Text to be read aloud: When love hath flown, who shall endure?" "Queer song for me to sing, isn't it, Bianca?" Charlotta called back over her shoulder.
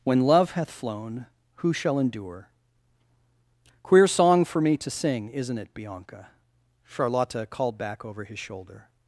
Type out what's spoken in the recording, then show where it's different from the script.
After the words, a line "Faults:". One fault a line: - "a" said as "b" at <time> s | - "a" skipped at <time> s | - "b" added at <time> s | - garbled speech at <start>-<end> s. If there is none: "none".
When love hath flown, who shall endure?" "Queer song for me to sing, isn't it, Bianca?" Charlotta called back over his shoulder.
Faults:
- "her" said as "his" at 8.2 s